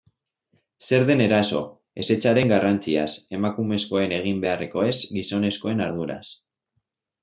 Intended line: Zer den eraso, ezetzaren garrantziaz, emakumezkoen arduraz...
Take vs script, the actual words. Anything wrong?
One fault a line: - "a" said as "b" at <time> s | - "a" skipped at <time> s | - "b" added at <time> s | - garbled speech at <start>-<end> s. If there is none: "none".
- "egin beharrekoez gizonezkoen" added at 4.2 s